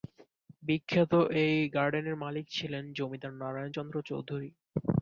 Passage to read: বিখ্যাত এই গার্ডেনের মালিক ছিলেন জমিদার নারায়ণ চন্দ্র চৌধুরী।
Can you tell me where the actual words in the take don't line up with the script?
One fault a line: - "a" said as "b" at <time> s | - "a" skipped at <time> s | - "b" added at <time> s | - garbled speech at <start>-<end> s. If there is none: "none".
none